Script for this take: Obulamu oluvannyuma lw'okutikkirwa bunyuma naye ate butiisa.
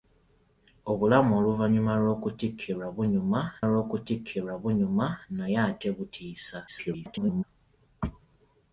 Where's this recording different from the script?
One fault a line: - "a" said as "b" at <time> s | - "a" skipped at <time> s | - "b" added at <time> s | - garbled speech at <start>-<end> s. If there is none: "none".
- "lw'okutikkirwa bunyuma" added at 3.7 s
- garbled speech at 6.7-7.4 s